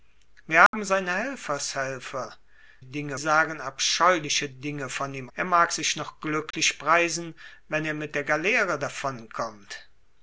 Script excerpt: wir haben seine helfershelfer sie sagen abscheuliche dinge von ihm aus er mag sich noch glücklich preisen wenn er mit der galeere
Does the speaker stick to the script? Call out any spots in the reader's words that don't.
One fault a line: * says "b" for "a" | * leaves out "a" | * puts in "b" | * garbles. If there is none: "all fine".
* says "dinge" for "sie"
* leaves out "aus"